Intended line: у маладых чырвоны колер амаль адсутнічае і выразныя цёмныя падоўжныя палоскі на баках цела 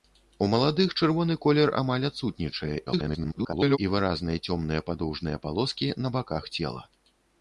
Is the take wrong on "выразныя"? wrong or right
right